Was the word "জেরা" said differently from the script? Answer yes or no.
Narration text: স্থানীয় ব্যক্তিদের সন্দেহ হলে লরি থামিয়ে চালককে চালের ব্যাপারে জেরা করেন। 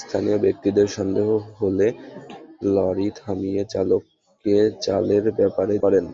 yes